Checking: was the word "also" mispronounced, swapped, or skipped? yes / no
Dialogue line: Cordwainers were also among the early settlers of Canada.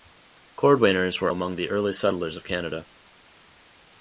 yes